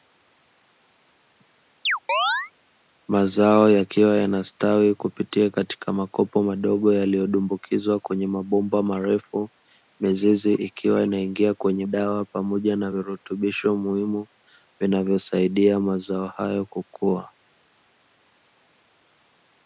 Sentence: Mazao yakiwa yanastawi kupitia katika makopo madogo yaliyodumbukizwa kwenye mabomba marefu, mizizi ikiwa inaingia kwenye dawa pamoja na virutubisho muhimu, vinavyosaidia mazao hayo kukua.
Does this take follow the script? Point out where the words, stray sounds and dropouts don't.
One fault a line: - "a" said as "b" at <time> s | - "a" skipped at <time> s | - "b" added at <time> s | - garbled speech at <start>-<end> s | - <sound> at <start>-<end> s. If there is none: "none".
- chirp at 1.9-2.5 s